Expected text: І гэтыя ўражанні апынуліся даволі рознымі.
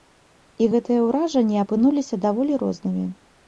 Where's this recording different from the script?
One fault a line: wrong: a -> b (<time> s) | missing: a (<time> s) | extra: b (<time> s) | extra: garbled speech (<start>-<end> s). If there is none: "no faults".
no faults